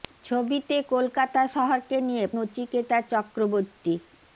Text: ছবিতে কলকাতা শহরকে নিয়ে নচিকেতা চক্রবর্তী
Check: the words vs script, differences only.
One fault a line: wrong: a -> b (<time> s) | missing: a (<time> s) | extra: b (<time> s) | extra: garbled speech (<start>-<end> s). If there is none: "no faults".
no faults